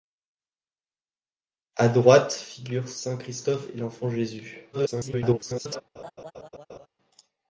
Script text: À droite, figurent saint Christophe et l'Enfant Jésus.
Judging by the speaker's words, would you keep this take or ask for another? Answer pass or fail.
fail